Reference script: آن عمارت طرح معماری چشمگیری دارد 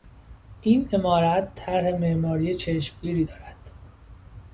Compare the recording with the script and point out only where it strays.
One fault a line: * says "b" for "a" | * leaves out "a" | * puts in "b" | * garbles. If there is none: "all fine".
* says "این" for "آن"